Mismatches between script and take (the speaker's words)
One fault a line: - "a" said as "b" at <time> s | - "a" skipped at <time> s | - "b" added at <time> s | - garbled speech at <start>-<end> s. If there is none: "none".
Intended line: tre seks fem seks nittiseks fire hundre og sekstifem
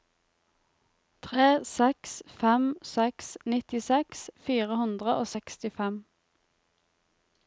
none